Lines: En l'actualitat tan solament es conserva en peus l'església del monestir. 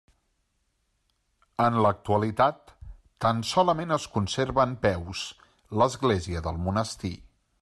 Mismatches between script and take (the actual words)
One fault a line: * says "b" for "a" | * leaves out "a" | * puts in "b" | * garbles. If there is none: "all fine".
all fine